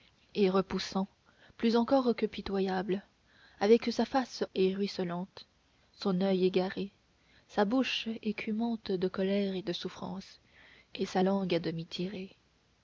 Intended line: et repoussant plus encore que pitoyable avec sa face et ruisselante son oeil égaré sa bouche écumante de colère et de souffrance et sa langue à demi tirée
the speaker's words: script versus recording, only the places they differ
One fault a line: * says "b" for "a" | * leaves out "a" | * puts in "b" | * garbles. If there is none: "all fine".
all fine